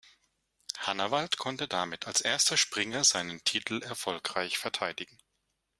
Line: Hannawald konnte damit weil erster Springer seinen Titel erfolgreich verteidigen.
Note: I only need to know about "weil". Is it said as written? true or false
false